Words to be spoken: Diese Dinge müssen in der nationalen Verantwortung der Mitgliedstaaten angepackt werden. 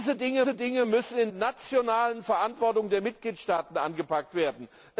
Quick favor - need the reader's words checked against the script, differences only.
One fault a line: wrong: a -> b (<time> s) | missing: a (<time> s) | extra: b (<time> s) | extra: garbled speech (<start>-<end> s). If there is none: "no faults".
extra: diese Dinge (0.4 s)
missing: der (1.3 s)